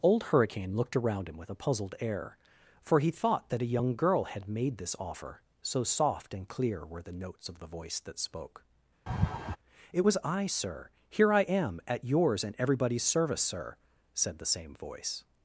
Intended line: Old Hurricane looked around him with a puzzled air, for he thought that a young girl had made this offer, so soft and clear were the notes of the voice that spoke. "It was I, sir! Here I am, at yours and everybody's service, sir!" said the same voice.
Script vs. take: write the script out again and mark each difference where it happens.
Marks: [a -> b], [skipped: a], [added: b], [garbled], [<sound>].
Old Hurricane looked around him with a puzzled air, for he thought that a young girl had made this offer, so soft and clear were the notes of the voice that spoke. [laugh] "It was I, sir! Here I am, at yours and everybody's service, sir!" said the same voice.